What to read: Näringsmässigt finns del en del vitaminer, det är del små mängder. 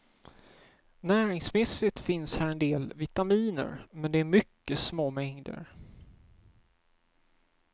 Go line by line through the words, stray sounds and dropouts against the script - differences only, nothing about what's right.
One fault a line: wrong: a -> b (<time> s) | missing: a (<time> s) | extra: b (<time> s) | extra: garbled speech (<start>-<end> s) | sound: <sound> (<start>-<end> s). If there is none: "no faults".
wrong: del -> här (2.4 s)
extra: men (3.9 s)
wrong: del -> mycket (4.2 s)